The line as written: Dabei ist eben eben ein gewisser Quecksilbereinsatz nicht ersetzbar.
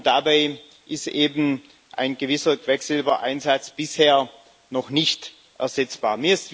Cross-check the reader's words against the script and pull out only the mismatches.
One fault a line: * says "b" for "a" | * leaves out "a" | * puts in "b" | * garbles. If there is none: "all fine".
* leaves out "eben"
* puts in "bisher noch"